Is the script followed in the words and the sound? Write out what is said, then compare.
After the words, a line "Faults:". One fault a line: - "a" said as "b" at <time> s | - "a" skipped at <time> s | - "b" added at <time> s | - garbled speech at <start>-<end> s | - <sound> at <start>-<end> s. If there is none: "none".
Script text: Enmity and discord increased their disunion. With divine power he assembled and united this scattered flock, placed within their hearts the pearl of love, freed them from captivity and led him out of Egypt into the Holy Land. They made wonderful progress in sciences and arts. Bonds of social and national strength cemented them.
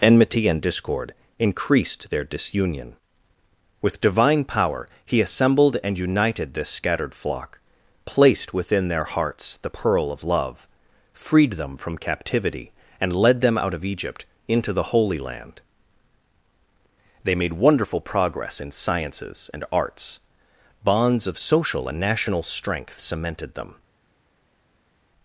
Enmity and discord increased their disunion. With divine power he assembled and united this scattered flock, placed within their hearts the pearl of love, freed them from captivity and led them out of Egypt into the Holy Land. They made wonderful progress in sciences and arts. Bonds of social and national strength cemented them.
Faults:
- "him" said as "them" at 13.4 s